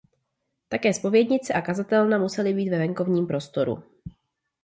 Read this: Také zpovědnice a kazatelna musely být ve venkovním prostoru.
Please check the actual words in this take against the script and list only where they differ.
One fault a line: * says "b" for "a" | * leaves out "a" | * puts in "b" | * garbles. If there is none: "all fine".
all fine